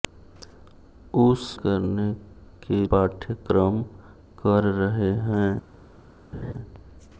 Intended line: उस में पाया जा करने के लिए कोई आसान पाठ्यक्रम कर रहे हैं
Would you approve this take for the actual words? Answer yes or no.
no